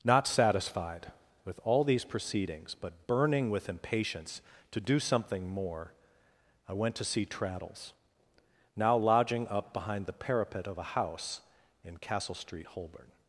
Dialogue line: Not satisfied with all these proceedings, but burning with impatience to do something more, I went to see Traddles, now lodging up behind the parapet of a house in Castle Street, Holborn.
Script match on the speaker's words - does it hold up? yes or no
yes